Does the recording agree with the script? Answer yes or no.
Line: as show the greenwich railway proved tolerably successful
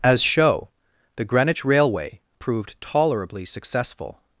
yes